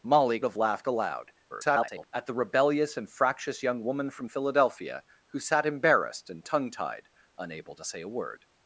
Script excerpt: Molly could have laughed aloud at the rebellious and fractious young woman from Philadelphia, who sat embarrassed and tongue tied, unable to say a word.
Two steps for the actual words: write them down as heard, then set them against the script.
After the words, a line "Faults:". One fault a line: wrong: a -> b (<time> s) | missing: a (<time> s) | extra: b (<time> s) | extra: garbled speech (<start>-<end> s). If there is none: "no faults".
Molly have laughed aloud [garbled] at the rebellious and fractious young woman from Philadelphia, who sat embarrassed and tongue tied, unable to say a word.
Faults:
missing: could (0.4 s)
extra: garbled speech (1.5-2.1 s)